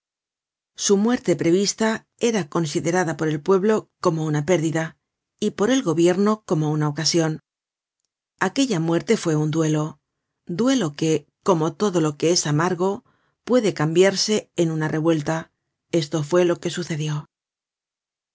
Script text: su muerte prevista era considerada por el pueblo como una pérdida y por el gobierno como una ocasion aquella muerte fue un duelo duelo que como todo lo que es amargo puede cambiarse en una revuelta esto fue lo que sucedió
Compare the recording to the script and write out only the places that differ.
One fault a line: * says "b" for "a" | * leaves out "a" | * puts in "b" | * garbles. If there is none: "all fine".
all fine